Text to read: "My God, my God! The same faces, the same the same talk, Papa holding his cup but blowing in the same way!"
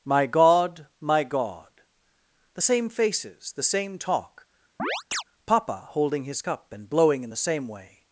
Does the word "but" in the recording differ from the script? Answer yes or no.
yes